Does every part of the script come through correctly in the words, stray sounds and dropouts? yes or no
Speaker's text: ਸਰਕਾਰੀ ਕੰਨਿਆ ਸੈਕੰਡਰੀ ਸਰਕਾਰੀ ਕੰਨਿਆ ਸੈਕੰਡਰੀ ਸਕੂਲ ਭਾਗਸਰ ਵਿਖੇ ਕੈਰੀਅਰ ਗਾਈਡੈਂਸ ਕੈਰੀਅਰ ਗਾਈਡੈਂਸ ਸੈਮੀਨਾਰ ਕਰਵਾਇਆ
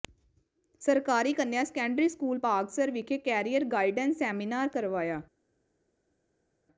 no